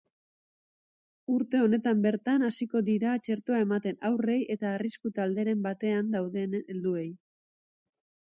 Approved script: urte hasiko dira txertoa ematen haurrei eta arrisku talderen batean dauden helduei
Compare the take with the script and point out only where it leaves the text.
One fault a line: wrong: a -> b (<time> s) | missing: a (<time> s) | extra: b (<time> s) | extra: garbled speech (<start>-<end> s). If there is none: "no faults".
extra: honetan bertan (1.6 s)